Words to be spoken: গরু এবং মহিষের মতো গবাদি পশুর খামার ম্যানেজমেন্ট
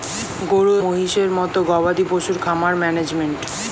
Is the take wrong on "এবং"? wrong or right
wrong